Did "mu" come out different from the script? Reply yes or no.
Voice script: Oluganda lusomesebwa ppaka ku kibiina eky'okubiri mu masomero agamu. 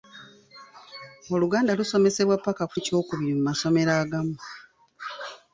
no